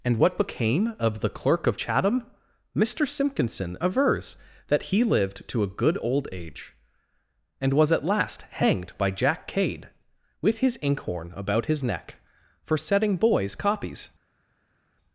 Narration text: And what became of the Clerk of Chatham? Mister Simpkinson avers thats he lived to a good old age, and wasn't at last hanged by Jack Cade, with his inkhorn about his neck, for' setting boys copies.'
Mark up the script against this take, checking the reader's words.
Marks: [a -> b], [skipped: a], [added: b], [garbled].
And what became of the Clerk of Chatham? Mister Simpkinson avers [thats -> that] he lived to a good old age, and [wasn't -> was] at last hanged by Jack Cade, with his inkhorn about his neck, for' setting boys copies.'